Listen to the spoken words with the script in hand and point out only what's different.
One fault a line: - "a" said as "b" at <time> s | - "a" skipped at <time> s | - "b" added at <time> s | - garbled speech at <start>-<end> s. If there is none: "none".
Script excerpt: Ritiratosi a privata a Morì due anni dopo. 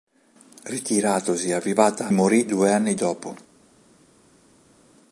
none